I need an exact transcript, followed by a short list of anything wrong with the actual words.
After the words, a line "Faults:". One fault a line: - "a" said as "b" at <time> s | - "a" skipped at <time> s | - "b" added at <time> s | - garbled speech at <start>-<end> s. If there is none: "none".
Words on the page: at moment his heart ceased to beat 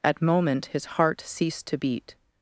at moment his heart ceased to beat
Faults:
none